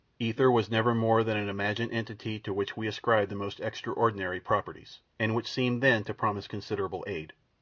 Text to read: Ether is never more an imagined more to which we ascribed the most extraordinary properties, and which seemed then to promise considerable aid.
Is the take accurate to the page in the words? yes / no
no